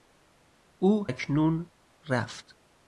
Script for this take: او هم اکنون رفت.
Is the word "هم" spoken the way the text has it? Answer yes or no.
no